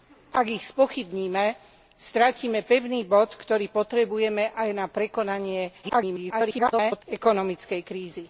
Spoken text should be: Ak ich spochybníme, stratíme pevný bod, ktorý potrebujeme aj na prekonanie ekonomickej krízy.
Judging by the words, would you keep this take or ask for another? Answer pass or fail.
fail